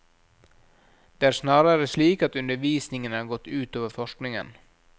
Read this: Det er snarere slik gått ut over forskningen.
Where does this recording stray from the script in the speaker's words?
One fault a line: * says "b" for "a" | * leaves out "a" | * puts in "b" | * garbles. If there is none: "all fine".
* puts in "at undervisningen har"